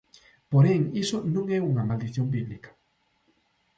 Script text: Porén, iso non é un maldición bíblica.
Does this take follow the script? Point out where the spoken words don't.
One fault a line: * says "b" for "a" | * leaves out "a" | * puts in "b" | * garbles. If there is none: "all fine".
* says "unha" for "un"